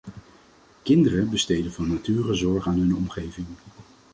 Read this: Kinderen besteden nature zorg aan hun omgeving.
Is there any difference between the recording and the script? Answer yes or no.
yes